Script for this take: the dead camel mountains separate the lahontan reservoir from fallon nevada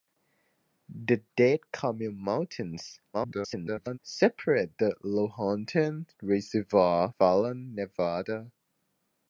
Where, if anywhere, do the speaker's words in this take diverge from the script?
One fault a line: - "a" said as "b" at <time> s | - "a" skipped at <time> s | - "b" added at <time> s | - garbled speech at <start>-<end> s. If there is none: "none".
- garbled speech at 3.1-4.0 s
- "from" skipped at 7.1 s